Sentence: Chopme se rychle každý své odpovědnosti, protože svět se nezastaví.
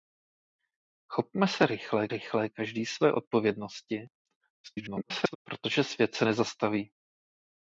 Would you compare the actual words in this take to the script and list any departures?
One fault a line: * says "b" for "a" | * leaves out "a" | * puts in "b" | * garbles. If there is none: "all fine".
* puts in "rychle"
* garbles